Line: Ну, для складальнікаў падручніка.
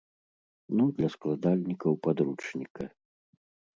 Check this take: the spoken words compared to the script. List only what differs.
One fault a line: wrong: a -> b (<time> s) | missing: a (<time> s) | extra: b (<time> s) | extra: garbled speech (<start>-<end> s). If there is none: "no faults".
no faults